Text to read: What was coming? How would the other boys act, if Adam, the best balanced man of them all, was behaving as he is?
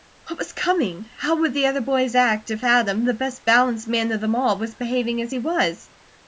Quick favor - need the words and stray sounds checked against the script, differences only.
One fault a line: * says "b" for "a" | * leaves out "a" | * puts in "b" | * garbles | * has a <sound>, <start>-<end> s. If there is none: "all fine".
* says "was" for "is"